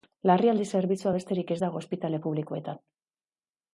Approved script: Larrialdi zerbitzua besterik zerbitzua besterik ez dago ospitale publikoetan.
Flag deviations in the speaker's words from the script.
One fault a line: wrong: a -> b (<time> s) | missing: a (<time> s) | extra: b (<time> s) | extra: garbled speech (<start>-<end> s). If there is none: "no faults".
missing: zerbitzua besterik (1.5 s)